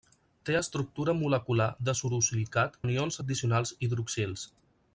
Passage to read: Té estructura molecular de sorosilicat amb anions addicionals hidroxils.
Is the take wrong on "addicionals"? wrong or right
right